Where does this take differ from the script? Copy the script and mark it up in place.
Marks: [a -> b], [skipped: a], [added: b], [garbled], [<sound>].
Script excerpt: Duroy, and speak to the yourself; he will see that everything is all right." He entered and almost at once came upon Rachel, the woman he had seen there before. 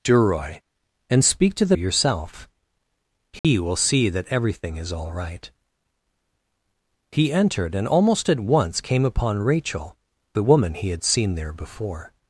Duroy, and speak to the yourself; he [dropout] will see that everything is all right." He entered and almost at once came upon Rachel, the woman he had seen there before.